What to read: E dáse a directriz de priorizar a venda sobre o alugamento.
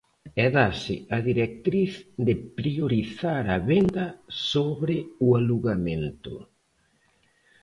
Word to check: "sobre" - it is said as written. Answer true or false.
true